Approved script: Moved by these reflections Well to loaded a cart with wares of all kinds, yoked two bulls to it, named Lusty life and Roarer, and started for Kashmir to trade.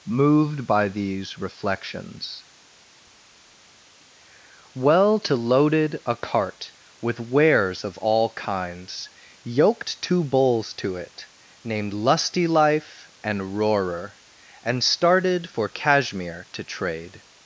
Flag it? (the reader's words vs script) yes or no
no